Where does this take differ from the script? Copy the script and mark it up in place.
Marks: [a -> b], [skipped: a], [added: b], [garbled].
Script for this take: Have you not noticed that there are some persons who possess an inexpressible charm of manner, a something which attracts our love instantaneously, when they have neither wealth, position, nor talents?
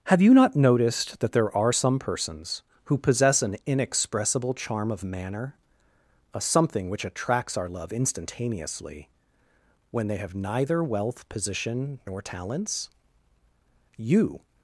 Have you not noticed that there are some persons who possess an inexpressible charm of manner, a something which attracts our love instantaneously, when they have neither wealth, position, nor talents? [added: You]